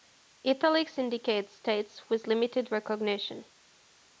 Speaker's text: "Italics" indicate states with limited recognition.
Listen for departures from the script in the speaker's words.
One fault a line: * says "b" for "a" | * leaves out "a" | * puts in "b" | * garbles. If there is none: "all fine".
all fine